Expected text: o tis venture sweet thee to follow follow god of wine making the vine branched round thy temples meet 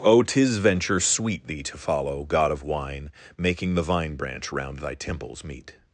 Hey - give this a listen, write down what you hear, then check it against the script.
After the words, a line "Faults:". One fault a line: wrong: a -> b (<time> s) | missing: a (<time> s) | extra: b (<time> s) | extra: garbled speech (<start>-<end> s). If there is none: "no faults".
o tis venture sweet thee to follow god of wine making the vine branch round thy temples meet
Faults:
missing: follow (2.2 s)
wrong: branched -> branch (4.2 s)